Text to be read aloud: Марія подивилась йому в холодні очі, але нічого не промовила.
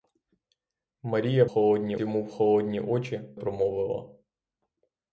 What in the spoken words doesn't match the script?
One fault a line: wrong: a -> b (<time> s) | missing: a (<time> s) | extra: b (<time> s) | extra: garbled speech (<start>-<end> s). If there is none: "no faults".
wrong: подивилась -> холодні (1.5 s)
missing: але нічого не (3.4 s)